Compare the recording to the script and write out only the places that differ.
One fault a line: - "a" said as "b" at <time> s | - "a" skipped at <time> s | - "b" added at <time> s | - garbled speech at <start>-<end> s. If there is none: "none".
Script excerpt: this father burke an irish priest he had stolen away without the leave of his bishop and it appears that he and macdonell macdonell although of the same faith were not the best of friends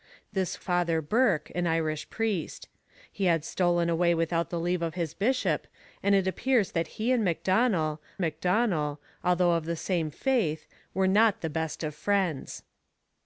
none